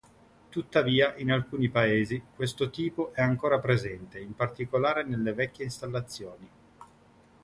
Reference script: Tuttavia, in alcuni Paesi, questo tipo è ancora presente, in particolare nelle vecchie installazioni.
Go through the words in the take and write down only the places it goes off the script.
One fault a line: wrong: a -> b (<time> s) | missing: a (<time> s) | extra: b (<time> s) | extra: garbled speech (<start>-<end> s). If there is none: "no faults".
no faults